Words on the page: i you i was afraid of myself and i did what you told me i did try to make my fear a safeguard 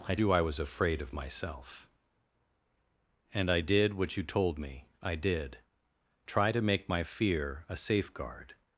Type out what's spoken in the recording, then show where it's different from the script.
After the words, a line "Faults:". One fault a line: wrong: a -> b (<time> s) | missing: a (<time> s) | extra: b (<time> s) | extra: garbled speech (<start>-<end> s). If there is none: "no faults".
i you i was afraid of myself and i did what you told me i did try to make my fear a safeguard
Faults:
no faults